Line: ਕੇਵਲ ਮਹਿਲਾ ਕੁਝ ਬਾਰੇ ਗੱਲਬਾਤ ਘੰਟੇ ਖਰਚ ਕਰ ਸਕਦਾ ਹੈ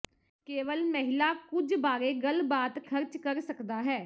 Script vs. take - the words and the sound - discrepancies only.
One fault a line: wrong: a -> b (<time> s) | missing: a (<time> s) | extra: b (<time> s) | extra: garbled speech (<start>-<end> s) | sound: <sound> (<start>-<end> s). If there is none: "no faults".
missing: ਘੰਟੇ (2.8 s)